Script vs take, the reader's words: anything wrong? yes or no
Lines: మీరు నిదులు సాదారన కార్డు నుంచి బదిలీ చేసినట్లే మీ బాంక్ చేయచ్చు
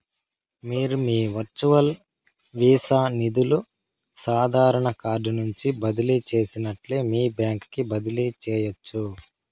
yes